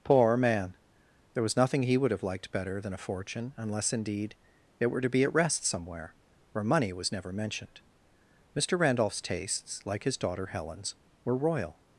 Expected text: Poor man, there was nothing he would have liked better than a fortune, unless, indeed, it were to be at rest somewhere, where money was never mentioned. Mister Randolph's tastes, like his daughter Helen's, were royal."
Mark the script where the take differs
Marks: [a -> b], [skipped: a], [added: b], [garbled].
Poor man, there was nothing he would have liked better than a fortune, unless, indeed, it were to be at rest somewhere, where money was never mentioned. Mister Randolph's tastes, like his daughter Helen's, were royal."